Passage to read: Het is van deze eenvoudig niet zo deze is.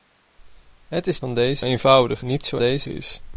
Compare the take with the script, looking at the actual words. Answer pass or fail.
pass